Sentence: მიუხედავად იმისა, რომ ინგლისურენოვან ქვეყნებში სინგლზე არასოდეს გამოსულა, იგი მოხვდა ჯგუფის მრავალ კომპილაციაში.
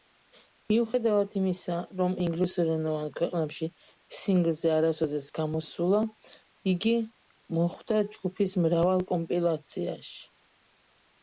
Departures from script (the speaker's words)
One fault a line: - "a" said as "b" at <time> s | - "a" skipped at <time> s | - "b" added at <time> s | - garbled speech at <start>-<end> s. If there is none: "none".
none